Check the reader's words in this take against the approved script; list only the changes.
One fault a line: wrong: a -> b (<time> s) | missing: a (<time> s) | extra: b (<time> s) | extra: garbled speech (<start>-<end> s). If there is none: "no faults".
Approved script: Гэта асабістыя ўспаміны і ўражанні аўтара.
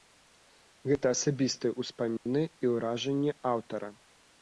no faults